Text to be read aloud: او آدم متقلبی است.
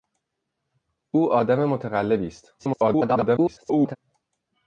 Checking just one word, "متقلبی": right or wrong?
right